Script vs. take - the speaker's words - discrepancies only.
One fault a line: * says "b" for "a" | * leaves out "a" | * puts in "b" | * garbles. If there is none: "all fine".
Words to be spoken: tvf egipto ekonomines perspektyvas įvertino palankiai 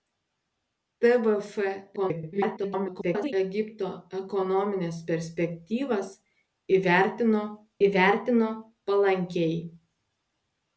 * garbles
* puts in "įvertino"